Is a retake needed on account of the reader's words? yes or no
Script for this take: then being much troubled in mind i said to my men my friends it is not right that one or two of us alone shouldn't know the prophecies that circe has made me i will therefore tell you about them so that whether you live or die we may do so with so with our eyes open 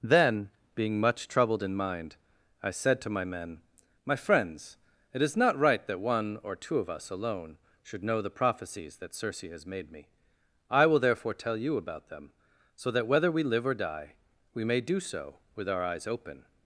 yes